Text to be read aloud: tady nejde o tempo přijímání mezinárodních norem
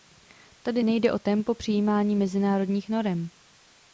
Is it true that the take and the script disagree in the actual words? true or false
false